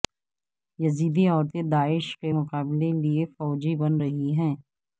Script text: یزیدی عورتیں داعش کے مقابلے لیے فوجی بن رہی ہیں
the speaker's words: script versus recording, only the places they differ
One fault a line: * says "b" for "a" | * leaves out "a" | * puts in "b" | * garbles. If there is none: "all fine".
all fine